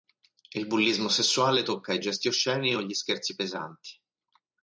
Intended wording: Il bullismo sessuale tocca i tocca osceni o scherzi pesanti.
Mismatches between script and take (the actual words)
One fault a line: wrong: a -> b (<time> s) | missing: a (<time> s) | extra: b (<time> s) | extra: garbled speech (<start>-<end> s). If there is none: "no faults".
wrong: tocca -> gesti (2.0 s)
extra: gli (2.8 s)